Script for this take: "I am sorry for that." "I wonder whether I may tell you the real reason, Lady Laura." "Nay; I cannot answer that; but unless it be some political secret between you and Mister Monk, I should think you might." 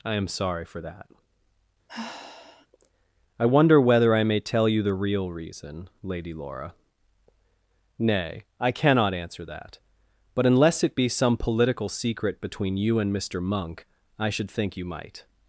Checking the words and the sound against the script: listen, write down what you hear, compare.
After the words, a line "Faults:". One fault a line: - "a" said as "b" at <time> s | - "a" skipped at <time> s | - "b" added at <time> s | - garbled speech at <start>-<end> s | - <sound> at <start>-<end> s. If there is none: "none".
"I am sorry for that." "I wonder whether I may tell you the real reason, Lady Laura." "Nay; I cannot answer that; but unless it be some political secret between you and Mister Monk, I should think you might."
Faults:
- sigh at 1.9-2.7 s